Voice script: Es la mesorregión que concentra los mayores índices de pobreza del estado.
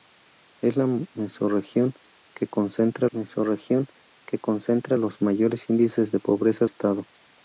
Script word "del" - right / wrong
wrong